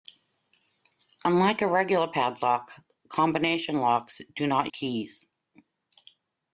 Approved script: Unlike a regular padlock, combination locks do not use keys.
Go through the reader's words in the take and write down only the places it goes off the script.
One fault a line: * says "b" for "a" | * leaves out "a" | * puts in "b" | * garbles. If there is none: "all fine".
* leaves out "use"